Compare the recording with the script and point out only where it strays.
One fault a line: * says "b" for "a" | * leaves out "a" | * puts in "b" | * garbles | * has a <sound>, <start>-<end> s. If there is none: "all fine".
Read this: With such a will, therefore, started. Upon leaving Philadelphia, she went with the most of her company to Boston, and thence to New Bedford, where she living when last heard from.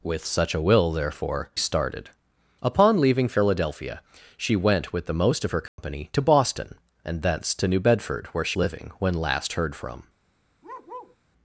* has a dropout, 5.7-5.8 s
* has a bark, 10.6-11.2 s